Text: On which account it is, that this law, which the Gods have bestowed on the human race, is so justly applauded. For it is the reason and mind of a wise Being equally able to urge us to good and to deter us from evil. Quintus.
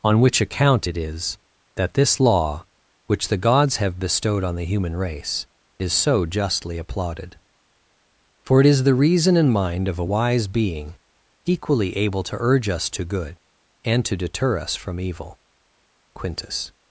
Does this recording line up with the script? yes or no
yes